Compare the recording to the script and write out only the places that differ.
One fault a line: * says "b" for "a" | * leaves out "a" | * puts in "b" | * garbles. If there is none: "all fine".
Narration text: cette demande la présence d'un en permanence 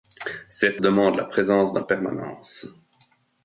all fine